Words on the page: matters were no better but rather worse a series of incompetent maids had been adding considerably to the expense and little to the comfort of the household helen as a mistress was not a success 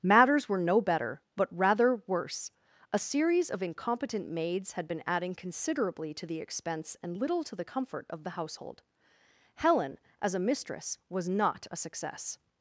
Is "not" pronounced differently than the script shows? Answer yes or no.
no